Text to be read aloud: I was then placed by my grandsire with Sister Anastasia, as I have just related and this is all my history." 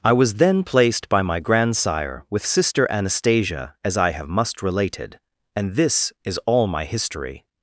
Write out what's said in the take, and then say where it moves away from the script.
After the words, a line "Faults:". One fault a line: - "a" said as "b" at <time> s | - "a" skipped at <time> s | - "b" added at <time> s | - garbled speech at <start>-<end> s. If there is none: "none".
I was then placed by my grandsire with Sister Anastasia, as I have must related and this is all my history."
Faults:
- "just" said as "must" at 4.3 s